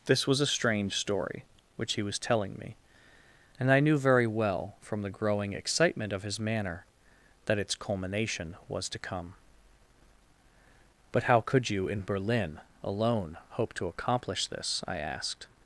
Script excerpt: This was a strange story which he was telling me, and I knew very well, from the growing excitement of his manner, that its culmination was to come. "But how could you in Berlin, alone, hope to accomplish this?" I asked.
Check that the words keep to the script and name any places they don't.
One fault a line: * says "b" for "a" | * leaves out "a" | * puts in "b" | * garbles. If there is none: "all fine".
all fine